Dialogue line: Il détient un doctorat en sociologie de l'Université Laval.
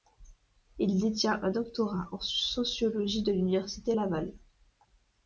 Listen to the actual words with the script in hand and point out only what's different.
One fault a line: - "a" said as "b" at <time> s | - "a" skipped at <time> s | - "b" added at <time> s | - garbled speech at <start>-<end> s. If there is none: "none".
none